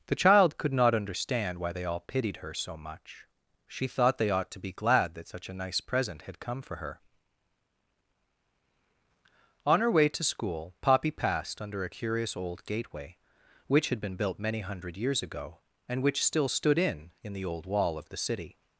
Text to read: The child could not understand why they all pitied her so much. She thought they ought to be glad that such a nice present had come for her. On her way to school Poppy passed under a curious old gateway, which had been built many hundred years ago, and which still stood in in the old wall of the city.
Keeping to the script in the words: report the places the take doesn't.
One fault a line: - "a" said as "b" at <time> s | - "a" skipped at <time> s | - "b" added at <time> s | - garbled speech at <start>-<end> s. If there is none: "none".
none